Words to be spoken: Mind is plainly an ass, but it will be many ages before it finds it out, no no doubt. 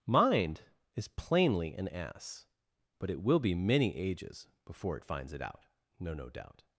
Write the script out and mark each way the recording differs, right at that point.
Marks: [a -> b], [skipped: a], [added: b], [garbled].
Mind is plainly an ass, but it will be many ages before it finds it out, no no doubt.